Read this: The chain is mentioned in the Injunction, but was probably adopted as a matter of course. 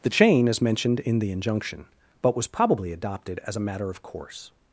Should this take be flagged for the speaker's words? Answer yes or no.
no